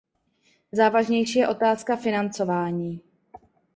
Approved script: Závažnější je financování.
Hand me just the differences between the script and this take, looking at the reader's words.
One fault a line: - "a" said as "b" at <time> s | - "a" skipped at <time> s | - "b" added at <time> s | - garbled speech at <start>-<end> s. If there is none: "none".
- "otázka" added at 1.5 s